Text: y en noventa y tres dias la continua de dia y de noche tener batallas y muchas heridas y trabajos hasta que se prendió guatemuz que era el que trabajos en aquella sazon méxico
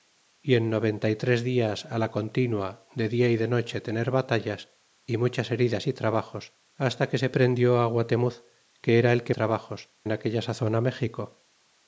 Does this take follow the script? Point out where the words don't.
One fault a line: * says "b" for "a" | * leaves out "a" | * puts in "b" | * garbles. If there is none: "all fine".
all fine